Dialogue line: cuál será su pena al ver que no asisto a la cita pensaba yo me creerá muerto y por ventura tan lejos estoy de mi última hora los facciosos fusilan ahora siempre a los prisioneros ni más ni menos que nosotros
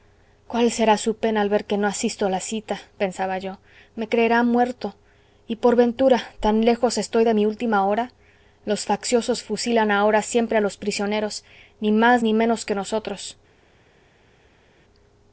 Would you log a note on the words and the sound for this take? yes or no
no